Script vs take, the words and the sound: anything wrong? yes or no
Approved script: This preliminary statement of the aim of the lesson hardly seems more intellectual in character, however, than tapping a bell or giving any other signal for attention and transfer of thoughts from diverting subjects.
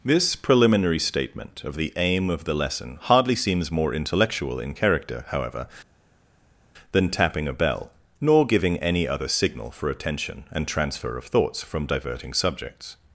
yes